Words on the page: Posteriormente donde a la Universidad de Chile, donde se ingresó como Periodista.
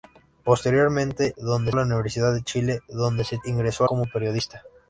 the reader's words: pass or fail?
pass